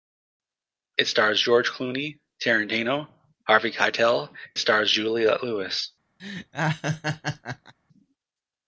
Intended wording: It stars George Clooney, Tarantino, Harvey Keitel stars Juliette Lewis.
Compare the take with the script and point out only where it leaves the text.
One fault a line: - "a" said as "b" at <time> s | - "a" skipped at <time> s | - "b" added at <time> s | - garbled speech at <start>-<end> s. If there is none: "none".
none